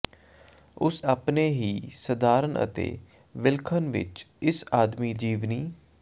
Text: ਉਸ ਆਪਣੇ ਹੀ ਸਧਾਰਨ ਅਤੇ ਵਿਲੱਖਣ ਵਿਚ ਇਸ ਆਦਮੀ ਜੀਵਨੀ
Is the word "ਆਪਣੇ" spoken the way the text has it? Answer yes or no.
yes